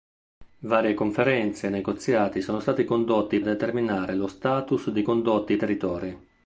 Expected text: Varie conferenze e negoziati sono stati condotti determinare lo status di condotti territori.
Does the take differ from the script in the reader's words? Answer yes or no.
no